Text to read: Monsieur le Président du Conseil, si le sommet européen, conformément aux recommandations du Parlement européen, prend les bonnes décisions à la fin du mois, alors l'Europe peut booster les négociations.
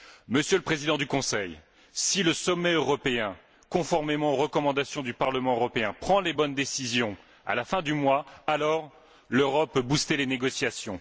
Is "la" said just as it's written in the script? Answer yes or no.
yes